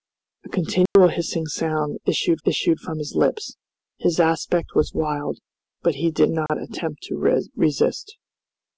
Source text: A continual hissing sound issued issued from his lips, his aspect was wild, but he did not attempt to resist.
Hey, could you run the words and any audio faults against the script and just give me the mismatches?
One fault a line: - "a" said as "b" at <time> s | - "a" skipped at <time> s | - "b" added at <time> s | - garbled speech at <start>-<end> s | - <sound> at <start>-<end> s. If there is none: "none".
- dropout at 0.9-1.0 s
- dropout at 6.5-6.5 s